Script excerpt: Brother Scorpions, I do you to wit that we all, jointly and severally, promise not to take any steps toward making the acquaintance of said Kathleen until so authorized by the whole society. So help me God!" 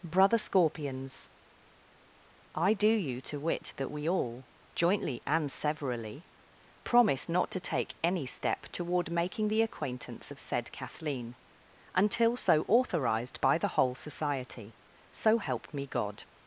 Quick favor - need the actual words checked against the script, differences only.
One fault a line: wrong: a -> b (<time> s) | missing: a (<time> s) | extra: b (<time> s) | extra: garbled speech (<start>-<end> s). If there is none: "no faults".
wrong: steps -> step (8.2 s)